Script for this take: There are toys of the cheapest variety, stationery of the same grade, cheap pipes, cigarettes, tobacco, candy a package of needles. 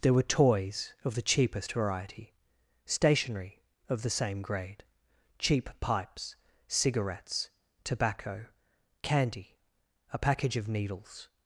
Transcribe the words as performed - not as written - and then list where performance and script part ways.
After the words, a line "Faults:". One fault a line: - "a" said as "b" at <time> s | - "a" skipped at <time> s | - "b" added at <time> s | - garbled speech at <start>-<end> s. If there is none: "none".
There were toys of the cheapest variety, stationery of the same grade, cheap pipes, cigarettes, tobacco, candy a package of needles.
Faults:
- "are" said as "were" at 0.1 s